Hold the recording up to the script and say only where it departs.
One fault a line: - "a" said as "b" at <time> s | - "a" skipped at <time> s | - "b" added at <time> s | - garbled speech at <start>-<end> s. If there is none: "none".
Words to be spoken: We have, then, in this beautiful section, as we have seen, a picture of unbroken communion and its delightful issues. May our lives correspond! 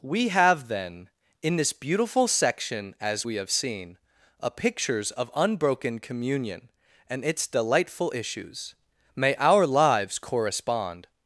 - "picture" said as "pictures" at 4.5 s